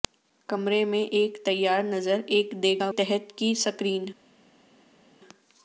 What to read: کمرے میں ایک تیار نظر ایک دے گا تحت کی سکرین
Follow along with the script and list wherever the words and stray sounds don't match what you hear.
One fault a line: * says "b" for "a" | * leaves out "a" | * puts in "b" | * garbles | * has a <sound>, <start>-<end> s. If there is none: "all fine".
all fine